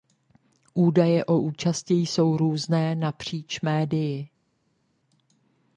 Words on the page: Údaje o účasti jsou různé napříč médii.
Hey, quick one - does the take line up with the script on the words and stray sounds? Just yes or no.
yes